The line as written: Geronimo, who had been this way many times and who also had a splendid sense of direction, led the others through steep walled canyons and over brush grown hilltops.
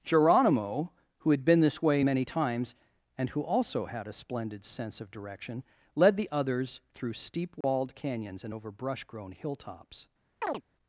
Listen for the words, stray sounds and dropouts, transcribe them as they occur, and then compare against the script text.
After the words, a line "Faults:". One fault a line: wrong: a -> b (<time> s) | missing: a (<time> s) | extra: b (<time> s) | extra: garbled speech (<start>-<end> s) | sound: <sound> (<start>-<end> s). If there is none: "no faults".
Geronimo, who had been this way many times and who also had a splendid sense of direction, led the others through steep walled canyons and over brush grown hilltops.
Faults:
sound: dropout (7.6-7.6 s)
sound: chirp (10.4-10.6 s)